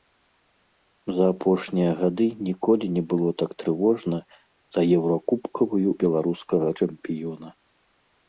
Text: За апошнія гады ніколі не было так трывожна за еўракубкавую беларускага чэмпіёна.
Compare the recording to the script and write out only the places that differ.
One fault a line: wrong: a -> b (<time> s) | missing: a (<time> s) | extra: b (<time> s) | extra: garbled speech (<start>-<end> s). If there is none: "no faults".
no faults